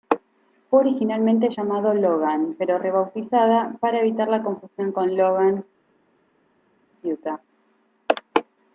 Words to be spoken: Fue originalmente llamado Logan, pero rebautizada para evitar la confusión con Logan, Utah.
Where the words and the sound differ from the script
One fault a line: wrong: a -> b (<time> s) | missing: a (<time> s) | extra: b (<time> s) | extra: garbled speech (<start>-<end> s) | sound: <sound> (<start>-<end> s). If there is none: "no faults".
no faults